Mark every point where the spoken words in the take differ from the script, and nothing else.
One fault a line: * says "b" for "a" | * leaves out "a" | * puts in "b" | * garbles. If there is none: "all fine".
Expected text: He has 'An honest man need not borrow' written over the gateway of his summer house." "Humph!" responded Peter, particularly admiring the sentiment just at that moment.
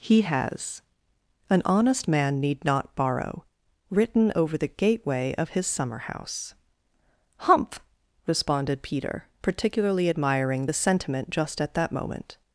all fine